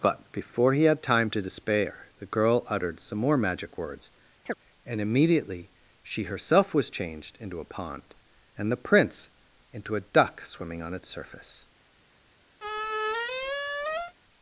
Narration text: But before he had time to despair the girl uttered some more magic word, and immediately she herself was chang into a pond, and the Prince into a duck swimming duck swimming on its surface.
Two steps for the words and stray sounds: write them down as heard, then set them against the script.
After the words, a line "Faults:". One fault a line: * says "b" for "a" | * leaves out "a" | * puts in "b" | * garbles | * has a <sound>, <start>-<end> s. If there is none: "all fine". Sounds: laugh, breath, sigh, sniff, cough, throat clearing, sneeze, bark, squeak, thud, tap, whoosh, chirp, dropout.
But before he had time to despair the girl uttered some more magic words, and immediately she herself was changed into a pond, and the Prince into a duck swimming on its surface.
Faults:
* says "words" for "word"
* has a chirp, 4.5-4.5 s
* says "changed" for "chang"
* leaves out "duck swimming"
* has a squeak, 12.6-14.1 s